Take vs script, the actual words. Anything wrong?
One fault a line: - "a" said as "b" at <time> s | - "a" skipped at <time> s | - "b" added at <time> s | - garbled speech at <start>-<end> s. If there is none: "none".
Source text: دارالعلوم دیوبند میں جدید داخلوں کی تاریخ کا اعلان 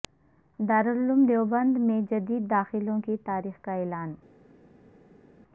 none